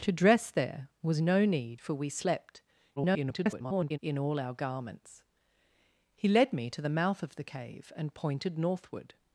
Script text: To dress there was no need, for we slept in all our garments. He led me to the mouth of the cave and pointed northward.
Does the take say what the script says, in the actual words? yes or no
no